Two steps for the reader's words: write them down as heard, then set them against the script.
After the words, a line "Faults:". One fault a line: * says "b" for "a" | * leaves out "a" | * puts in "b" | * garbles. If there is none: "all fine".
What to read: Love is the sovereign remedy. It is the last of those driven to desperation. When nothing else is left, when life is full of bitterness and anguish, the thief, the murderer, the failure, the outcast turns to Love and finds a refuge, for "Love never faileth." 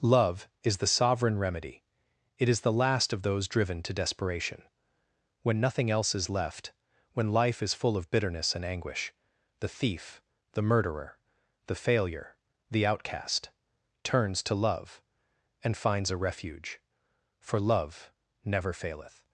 Love is the sovereign remedy. It is the last of those driven to desperation. When nothing else is left, when life is full of bitterness and anguish, the thief, the murderer, the failure, the outcast turns to Love and finds a refuge, for "Love never faileth."
Faults:
all fine